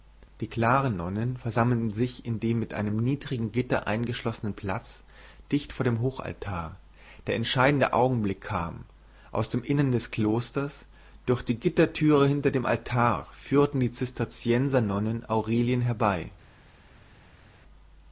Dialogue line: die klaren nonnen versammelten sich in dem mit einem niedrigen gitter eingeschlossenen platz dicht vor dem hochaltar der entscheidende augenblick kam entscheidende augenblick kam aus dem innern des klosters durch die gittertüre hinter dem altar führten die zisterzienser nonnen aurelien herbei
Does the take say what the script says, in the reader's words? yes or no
no